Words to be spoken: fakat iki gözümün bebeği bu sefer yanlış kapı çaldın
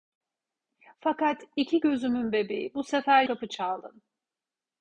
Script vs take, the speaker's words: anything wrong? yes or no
yes